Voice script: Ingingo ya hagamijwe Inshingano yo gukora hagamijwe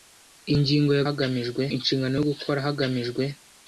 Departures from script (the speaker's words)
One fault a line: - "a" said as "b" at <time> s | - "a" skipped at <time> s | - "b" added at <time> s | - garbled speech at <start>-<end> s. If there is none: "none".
none